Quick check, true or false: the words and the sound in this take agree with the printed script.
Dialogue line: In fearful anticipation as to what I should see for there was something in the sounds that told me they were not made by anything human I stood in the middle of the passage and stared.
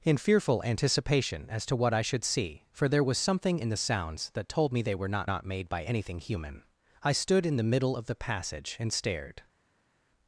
false